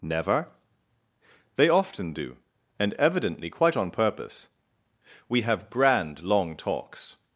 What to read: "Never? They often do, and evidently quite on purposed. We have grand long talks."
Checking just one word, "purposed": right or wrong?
wrong